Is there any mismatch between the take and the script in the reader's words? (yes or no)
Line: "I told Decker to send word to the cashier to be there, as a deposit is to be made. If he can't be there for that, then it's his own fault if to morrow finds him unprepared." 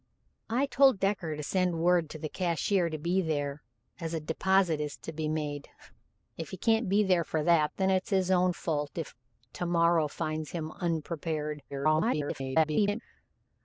yes